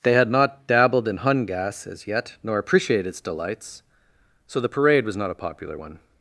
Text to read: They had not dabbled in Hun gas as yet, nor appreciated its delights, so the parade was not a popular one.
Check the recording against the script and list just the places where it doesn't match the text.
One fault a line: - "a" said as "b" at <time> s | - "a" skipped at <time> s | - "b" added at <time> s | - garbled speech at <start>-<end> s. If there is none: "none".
none